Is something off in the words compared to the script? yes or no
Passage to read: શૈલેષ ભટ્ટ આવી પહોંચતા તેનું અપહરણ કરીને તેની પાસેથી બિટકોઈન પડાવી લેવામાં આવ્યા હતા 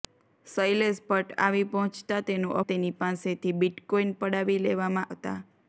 yes